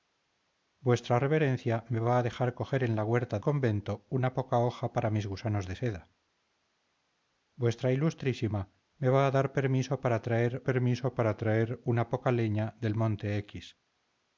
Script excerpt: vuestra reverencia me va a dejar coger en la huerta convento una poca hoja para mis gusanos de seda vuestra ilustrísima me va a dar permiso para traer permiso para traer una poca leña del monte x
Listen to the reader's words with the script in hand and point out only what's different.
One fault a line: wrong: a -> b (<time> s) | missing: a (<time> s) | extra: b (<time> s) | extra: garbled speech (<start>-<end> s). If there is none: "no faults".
no faults